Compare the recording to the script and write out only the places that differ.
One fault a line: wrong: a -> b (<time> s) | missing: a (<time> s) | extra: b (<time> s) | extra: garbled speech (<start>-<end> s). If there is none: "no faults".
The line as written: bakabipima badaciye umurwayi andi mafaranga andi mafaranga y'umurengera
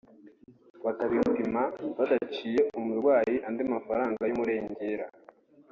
missing: andi mafaranga (4.2 s)